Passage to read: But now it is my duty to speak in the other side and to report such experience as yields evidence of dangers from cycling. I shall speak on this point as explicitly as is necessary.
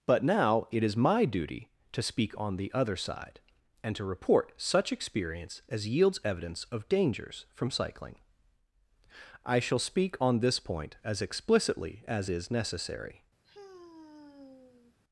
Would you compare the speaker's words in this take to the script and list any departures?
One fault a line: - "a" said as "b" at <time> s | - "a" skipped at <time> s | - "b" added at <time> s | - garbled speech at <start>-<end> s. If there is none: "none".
- "in" said as "on" at 2.4 s